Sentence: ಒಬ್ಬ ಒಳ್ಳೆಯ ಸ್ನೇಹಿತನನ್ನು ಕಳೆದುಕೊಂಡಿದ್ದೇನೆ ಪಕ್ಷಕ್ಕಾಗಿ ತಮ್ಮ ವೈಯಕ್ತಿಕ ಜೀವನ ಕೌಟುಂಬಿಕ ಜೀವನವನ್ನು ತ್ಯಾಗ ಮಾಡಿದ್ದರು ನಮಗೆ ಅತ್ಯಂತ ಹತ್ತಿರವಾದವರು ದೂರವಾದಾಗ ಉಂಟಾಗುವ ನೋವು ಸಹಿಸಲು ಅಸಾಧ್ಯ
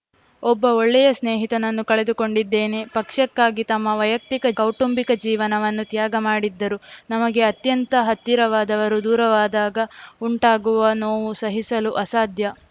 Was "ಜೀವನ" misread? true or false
true